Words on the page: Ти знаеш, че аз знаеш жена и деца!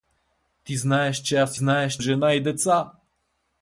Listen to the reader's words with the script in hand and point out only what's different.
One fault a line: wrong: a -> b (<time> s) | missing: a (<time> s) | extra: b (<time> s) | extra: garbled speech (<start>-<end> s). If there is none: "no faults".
no faults